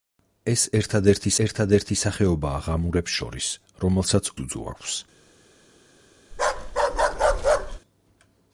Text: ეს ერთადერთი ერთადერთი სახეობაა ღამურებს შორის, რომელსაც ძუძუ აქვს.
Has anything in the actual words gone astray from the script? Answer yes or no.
no